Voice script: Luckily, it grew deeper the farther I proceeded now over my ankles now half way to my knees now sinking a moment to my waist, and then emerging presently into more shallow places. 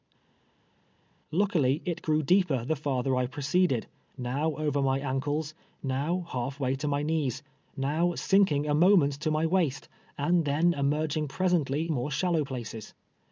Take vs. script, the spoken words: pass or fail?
fail